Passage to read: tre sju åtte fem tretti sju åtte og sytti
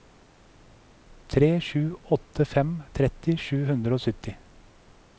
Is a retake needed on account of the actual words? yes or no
yes